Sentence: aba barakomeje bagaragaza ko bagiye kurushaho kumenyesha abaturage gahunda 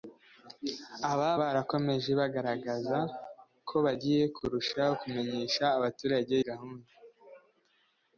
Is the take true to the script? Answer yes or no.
yes